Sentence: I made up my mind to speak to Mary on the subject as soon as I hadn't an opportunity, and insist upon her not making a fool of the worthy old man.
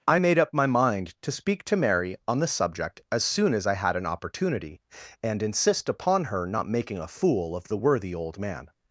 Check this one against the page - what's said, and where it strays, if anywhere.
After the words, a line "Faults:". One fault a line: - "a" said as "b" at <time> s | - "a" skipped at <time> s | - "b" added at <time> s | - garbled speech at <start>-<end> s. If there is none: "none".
I made up my mind to speak to Mary on the subject as soon as I had an opportunity, and insist upon her not making a fool of the worthy old man.
Faults:
- "hadn't" said as "had" at 3.7 s